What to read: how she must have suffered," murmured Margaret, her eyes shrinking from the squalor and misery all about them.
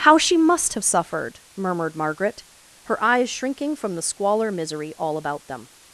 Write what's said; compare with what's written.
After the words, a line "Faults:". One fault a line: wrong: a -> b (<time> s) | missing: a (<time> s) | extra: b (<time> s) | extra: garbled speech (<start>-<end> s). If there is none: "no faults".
how she must have suffered," murmured Margaret, her eyes shrinking from the squalor misery all about them.
Faults:
missing: and (4.5 s)